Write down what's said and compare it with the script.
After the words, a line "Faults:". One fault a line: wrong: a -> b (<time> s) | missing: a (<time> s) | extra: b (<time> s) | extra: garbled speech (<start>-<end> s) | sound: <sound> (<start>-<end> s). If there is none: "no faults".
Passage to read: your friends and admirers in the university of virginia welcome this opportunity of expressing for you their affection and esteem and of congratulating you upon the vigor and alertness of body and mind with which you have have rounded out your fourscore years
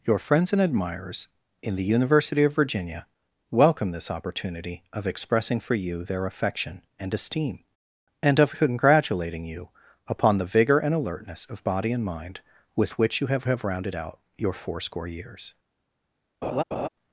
your friends and admirers in the university of virginia welcome this opportunity of expressing for you their affection and esteem and of congratulating you upon the vigor and alertness of body and mind with which you have have rounded out your fourscore years
Faults:
sound: laugh (16.4-16.9 s)